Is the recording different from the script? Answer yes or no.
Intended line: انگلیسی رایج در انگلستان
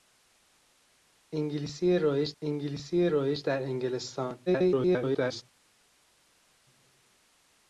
yes